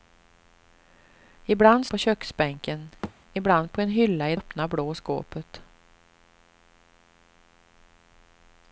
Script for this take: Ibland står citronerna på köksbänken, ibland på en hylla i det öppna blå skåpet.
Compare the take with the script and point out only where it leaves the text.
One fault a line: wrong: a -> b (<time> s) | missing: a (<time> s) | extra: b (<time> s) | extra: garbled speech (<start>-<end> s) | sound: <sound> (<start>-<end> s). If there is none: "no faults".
missing: står citronerna (1.9 s)
sound: thud (3.0-3.1 s)
missing: det (4.4 s)